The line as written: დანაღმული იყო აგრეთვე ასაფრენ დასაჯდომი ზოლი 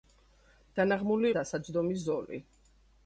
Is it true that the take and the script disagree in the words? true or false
true